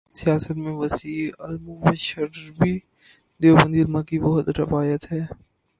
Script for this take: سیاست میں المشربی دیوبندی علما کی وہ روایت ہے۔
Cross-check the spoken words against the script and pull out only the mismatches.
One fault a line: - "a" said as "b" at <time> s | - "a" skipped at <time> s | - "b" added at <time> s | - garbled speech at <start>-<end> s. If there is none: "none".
- "وسیع" added at 0.7 s